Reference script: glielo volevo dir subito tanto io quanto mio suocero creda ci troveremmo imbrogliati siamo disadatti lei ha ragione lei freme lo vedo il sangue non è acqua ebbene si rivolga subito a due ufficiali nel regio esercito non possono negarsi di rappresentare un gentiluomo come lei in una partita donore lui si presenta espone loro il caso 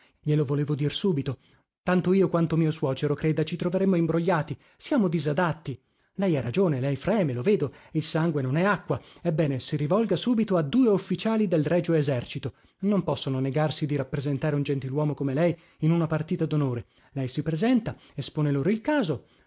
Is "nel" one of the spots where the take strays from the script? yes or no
yes